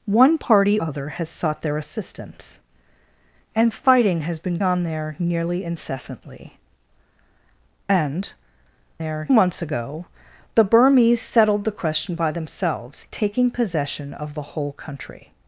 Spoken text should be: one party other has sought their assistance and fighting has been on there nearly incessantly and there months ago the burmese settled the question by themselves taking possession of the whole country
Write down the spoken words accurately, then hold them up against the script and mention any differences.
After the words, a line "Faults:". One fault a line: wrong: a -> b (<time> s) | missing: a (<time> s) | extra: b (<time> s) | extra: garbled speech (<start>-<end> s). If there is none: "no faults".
one party other has sought their assistance and fighting has been on there nearly incessantly and there months ago the burmese settled the question by themselves taking possession of the whole country
Faults:
no faults